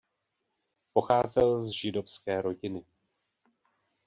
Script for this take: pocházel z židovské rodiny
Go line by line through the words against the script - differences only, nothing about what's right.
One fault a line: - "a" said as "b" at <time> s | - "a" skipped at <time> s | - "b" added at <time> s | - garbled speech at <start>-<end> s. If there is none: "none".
none